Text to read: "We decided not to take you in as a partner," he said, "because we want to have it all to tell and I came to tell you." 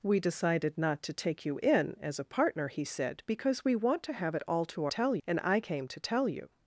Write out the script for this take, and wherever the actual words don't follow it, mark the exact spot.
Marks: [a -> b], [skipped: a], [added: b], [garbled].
"We decided not to take you in as a partner," he said, "because we want to have it all to tell and I came to tell you."